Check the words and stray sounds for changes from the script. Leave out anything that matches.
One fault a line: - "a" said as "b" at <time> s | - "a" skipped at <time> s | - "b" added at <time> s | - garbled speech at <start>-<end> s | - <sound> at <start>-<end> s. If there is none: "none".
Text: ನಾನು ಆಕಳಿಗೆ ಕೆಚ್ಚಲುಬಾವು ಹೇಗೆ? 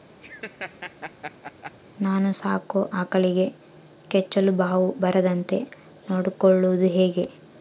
- laugh at 0.2-1.7 s
- "ಸಾಕೋ" added at 2.3 s
- "ಬರದಂತೆ ನೊಡ್ಕೊಳೋದು" added at 5.0 s